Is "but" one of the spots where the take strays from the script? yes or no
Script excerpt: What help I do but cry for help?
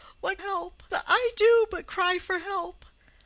no